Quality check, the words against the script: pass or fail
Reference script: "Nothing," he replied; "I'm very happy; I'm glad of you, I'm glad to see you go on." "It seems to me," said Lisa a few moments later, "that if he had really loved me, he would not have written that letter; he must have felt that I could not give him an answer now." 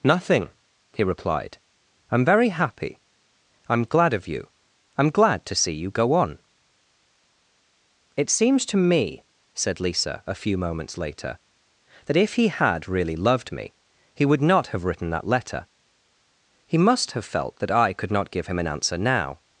pass